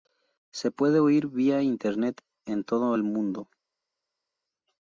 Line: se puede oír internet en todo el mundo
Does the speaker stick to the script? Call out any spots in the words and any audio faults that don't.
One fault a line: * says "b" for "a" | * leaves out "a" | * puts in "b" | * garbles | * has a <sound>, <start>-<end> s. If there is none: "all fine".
* puts in "vía"